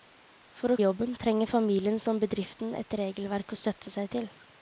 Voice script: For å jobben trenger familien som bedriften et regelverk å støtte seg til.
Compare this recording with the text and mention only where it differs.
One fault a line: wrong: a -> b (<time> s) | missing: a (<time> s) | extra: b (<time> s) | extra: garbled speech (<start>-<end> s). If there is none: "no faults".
no faults